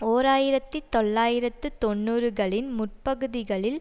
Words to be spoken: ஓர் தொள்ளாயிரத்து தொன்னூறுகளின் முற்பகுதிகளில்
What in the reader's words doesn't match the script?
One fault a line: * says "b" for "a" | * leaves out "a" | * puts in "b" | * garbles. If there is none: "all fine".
* puts in "ஆயிரத்தி"